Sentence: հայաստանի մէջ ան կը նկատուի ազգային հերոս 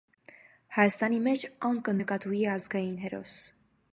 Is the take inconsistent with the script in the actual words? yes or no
no